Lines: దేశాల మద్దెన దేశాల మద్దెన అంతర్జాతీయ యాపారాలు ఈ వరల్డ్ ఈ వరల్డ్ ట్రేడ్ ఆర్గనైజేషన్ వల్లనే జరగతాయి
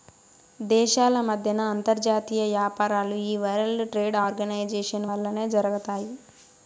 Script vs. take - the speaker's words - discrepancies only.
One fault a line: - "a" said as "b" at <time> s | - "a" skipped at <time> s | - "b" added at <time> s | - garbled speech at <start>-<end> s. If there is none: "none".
- "దేశాల మద్దెన" skipped at 1.6 s
- "ఈ వరల్డ్" skipped at 3.9 s